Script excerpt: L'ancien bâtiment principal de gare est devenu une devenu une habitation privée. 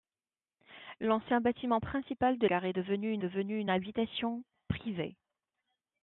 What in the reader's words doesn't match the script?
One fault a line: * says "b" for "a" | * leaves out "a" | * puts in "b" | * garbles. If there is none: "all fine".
all fine